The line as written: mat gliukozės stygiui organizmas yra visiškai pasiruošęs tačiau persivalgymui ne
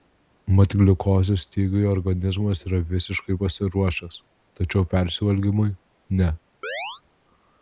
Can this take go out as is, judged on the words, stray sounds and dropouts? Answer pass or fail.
fail